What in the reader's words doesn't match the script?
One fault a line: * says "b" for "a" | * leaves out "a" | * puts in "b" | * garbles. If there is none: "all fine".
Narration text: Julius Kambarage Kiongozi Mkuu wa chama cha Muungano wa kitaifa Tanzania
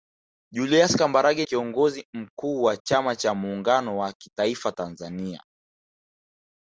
all fine